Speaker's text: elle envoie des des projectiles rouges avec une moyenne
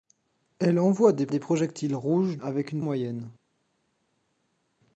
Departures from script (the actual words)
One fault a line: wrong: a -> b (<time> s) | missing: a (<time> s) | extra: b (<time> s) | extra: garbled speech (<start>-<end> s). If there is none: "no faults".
no faults